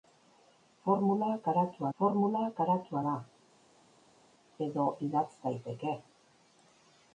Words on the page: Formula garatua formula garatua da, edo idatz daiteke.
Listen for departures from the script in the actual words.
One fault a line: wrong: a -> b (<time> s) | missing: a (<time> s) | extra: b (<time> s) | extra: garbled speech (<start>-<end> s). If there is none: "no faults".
no faults